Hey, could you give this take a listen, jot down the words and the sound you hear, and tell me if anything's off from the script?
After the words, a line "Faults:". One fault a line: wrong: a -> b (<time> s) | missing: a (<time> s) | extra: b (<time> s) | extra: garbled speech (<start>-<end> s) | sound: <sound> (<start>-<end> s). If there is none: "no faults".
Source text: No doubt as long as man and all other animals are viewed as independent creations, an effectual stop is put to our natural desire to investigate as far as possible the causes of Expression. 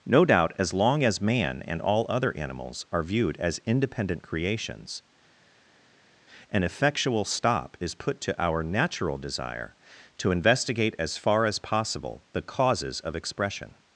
No doubt as long as man and all other animals are viewed as independent creations, an effectual stop is put to our natural desire to investigate as far as possible the causes of Expression.
Faults:
no faults